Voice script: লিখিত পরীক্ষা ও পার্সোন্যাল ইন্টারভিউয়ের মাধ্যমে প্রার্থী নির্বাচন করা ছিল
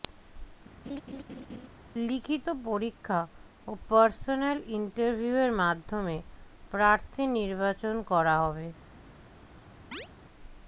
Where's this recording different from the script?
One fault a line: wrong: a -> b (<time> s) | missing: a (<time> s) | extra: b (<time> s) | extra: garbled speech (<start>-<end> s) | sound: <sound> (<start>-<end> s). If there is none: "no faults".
sound: laugh (0.8-1.7 s)
wrong: ছিল -> হবে (8.4 s)
sound: chirp (9.9-10.1 s)